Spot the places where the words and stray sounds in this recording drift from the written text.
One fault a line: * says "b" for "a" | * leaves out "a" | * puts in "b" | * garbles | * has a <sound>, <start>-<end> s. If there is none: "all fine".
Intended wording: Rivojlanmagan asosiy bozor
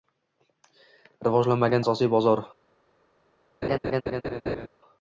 * has a laugh, 3.6-4.7 s